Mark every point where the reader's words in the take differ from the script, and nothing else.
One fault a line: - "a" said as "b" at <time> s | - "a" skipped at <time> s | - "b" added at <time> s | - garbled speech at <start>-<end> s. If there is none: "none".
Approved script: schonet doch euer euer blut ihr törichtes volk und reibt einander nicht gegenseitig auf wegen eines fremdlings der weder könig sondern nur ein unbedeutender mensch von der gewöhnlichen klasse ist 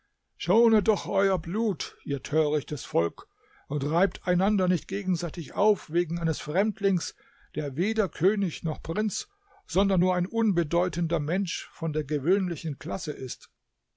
- "euer" skipped at 1.4 s
- "noch prinz" added at 8.6 s